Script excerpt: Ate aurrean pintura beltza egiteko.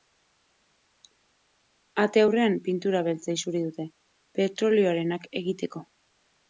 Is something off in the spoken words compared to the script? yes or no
yes